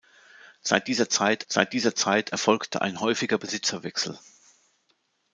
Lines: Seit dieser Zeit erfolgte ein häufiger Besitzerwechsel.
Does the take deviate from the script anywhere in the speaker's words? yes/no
yes